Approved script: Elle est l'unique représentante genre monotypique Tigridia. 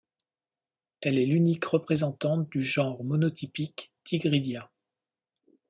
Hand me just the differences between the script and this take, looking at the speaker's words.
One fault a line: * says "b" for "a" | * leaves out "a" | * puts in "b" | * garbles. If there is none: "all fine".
* puts in "du"